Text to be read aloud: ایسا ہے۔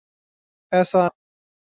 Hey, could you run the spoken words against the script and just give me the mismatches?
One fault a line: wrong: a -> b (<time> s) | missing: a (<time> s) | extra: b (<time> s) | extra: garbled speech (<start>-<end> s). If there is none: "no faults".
no faults